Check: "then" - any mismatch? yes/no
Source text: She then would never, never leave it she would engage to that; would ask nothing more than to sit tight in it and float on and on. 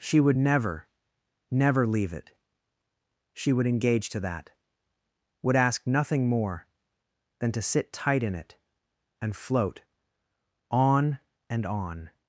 yes